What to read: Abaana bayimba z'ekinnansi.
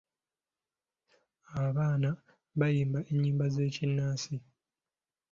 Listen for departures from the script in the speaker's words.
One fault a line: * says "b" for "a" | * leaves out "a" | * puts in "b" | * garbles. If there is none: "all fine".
* puts in "ennyimba"